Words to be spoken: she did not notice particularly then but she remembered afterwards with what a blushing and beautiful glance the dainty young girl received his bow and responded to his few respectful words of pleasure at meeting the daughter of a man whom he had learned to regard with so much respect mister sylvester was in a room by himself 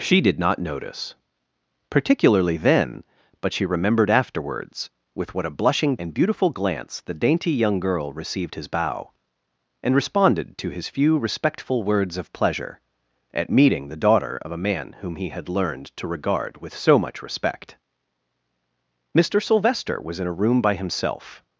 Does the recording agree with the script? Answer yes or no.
yes